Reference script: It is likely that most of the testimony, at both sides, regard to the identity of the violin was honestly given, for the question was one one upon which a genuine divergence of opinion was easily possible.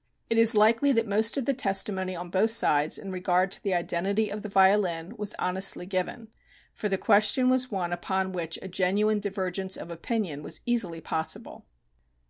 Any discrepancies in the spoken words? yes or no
yes